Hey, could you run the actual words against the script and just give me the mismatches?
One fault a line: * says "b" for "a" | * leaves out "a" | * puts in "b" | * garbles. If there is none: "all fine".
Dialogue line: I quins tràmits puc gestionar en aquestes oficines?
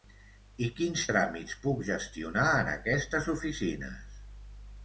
all fine